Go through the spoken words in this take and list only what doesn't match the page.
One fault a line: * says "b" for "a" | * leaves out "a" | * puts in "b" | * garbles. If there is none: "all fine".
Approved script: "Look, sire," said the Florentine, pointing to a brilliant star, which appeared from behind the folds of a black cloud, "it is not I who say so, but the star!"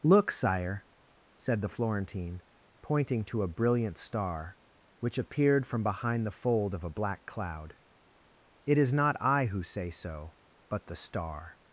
* says "fold" for "folds"